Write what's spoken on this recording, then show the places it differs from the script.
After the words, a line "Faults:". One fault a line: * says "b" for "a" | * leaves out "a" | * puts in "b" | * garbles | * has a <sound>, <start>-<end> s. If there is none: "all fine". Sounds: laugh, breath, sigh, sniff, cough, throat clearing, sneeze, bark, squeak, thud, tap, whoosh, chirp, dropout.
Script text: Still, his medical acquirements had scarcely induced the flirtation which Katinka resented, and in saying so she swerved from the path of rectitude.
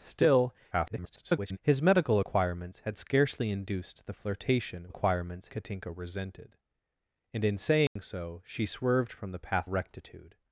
Still, [garbled] his medical acquirements had scarcely induced the flirtation acquirements Katinka resented, and in saying so she swerved from the path rectitude.
Faults:
* garbles
* says "acquirements" for "which"
* has a dropout, 7.9-8.0 s
* leaves out "of"